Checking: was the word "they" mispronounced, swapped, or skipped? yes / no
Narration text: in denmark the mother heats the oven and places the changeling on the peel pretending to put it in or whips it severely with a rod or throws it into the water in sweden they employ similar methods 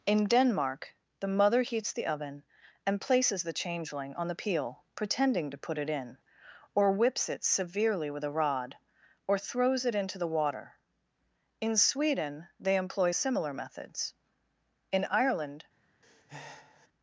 no